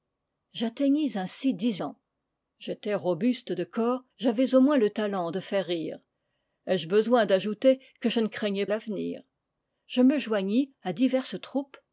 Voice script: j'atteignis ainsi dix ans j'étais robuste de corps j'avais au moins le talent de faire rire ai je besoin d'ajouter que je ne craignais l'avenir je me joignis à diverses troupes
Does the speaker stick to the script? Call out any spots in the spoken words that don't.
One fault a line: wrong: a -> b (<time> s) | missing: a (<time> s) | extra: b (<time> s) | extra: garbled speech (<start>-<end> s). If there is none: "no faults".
no faults